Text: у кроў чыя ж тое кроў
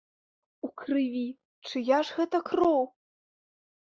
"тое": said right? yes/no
no